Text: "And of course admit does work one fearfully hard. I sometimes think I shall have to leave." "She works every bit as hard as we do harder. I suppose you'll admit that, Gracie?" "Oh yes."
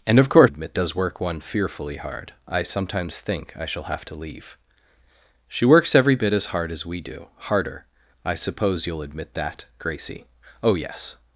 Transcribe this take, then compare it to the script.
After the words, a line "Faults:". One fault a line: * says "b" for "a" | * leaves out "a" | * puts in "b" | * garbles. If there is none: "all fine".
"And of course admit does work one fearfully hard. I sometimes think I shall have to leave." "She works every bit as hard as we do harder. I suppose you'll admit that, Gracie?" "Oh yes."
Faults:
all fine